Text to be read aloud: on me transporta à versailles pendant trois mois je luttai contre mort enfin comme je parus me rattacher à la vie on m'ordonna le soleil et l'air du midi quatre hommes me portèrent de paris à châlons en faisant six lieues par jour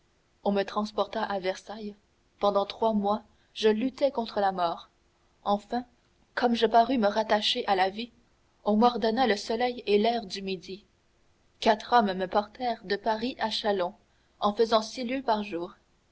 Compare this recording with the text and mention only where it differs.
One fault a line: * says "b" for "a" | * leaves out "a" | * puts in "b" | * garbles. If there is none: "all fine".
* puts in "la"